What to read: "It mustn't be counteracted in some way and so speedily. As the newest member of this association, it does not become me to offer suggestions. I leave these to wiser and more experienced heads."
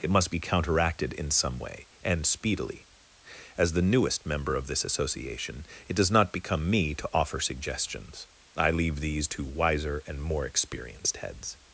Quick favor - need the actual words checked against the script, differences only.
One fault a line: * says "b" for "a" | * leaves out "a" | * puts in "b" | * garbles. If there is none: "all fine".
* says "must" for "mustn't"
* leaves out "so"